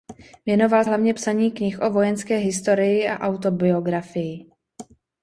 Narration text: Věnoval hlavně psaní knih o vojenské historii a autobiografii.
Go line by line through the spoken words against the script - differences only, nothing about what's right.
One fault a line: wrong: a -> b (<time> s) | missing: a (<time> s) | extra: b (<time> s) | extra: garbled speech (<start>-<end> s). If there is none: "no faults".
no faults